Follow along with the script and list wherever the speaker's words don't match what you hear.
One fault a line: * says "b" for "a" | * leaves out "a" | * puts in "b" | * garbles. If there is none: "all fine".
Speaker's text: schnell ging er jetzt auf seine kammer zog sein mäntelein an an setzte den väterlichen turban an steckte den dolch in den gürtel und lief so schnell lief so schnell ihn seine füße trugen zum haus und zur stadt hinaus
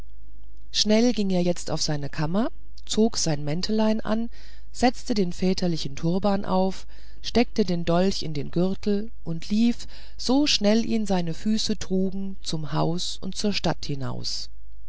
* leaves out "an"
* says "auf" for "an"
* leaves out "lief so schnell"